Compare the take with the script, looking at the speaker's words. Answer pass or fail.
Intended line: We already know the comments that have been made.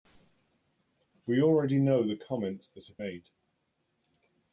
fail